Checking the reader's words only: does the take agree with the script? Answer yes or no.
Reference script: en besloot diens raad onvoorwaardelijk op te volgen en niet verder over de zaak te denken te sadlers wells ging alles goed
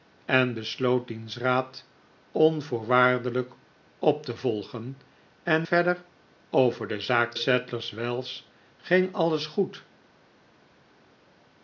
no